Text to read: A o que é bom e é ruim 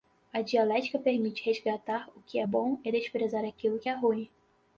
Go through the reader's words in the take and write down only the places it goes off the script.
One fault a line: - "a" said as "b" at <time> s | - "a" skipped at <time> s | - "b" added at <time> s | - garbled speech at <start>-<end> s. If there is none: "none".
- "dialética permite resgatar" added at 0.4 s
- "desprezar aquilo que" added at 2.9 s